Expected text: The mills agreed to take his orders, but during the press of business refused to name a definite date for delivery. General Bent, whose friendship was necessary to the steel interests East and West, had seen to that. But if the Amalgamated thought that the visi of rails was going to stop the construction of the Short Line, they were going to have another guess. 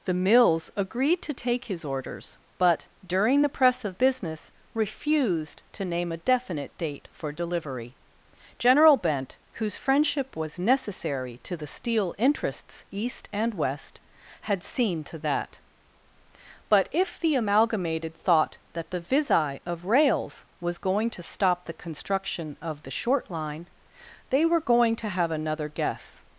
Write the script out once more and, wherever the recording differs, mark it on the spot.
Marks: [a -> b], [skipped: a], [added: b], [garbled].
The mills agreed to take his orders, but during the press of business refused to name a definite date for delivery. General Bent, whose friendship was necessary to the steel interests East and West, had seen to that. But if the Amalgamated thought that the visi of rails was going to stop the construction of the Short Line, they were going to have another guess.